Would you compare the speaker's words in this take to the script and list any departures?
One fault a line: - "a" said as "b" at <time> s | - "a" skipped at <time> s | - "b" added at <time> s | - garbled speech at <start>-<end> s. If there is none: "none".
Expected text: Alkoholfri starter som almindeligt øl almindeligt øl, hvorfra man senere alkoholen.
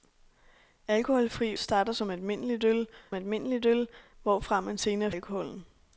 none